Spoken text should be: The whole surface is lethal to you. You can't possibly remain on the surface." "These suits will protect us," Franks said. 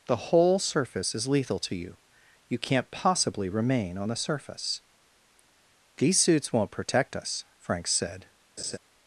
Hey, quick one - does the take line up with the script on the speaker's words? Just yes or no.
no